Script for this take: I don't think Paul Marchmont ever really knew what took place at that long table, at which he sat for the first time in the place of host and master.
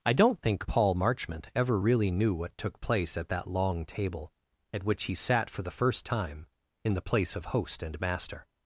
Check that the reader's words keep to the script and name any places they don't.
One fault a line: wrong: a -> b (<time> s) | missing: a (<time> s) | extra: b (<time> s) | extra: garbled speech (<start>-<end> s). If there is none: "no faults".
no faults